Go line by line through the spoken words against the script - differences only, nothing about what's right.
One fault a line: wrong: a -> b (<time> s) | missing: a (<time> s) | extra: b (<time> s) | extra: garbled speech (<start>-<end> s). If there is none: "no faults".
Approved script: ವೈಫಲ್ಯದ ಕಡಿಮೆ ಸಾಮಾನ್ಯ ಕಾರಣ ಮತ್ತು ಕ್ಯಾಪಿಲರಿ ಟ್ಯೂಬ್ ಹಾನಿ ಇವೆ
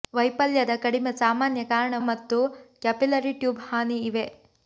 no faults